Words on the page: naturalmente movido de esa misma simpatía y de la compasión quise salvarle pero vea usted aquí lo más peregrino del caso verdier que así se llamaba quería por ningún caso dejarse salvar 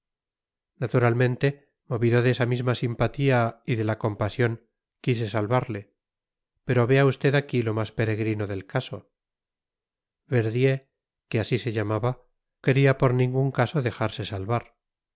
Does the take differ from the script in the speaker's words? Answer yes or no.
no